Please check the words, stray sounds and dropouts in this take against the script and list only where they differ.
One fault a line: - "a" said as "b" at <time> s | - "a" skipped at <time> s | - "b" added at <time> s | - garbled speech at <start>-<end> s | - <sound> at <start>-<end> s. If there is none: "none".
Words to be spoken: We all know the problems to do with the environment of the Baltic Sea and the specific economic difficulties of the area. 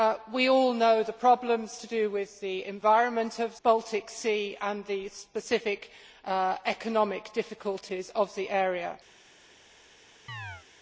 - "the" skipped at 3.5 s
- chirp at 10.3-10.7 s